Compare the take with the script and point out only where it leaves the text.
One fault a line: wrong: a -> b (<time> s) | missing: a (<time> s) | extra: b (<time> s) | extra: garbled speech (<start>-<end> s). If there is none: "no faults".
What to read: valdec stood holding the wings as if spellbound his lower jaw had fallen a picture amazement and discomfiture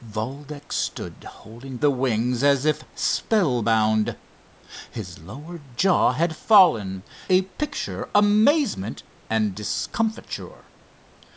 no faults